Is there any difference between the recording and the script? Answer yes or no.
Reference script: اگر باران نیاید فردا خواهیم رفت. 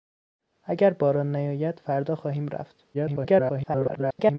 yes